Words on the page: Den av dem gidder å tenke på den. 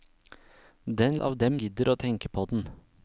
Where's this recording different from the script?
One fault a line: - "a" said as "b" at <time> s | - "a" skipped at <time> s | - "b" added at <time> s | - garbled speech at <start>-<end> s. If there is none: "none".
none